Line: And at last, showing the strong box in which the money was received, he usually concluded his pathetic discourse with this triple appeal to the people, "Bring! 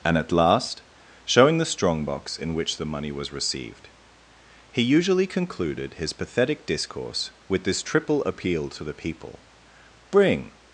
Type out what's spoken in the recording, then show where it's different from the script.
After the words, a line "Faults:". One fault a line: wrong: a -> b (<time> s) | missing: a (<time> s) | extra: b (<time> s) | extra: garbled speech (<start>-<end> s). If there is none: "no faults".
And at last, showing the strong box in which the money was received, he usually concluded his pathetic discourse with this triple appeal to the people, "Bring!
Faults:
no faults